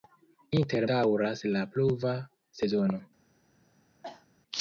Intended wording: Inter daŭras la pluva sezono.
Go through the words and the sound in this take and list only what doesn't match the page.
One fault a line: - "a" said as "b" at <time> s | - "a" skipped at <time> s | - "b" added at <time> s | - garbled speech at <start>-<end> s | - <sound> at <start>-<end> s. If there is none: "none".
- cough at 4.0-4.3 s